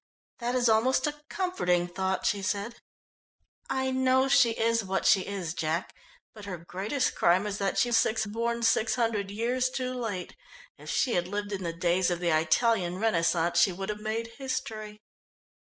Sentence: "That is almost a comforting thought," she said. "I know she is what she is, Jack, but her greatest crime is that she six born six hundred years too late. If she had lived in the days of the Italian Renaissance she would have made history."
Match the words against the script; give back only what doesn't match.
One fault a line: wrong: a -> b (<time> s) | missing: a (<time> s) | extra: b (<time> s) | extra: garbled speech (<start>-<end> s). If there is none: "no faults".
no faults